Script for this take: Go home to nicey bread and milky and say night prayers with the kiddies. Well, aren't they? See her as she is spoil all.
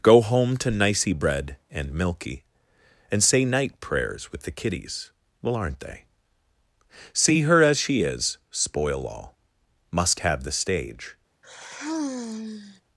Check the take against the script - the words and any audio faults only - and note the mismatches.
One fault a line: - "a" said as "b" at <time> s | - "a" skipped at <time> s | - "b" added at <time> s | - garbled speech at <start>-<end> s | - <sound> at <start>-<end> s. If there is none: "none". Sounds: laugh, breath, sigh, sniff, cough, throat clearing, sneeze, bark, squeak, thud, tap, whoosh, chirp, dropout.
- "Must have the stage" added at 9.9 s
- sigh at 11.4-12.8 s